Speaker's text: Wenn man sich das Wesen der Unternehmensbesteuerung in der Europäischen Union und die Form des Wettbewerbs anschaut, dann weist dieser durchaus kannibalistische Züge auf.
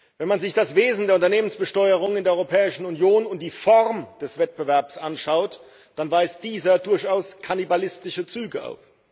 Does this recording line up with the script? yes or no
yes